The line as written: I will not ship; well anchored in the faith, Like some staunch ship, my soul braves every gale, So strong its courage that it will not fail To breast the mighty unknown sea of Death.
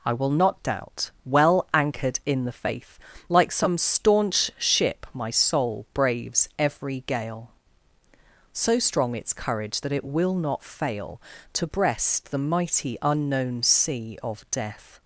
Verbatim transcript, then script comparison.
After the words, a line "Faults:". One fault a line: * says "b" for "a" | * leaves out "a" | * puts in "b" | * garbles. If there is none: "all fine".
I will not doubt; well anchored in the faith, Like some staunch ship, my soul braves every gale, So strong its courage that it will not fail To breast the mighty unknown sea of Death.
Faults:
* says "doubt" for "ship"